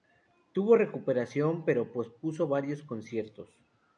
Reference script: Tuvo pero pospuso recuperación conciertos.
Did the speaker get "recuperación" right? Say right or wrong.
wrong